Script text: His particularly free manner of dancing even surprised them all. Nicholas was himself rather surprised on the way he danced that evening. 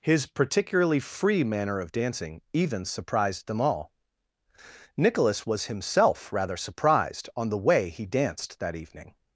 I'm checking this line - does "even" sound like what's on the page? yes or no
yes